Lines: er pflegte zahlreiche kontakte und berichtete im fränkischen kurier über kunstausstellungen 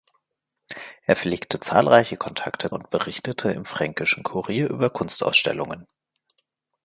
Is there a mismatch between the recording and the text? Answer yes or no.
no